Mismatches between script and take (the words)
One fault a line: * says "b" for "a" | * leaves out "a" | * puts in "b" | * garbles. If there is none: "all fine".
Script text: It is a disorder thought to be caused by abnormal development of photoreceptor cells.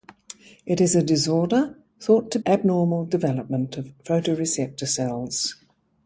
* leaves out "be caused by"